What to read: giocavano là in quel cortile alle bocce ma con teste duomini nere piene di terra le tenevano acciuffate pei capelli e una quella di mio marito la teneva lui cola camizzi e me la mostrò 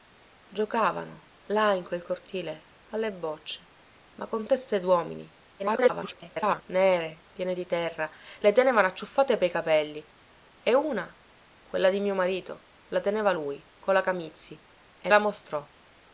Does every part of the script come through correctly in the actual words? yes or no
no